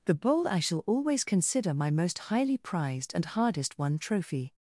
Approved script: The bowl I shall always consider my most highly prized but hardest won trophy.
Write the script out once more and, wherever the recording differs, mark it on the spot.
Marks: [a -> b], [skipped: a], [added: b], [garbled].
The bowl I shall always consider my most highly prized [but -> and] hardest won trophy.